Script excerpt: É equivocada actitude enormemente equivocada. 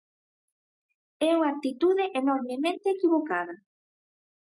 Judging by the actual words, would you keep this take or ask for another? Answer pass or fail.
fail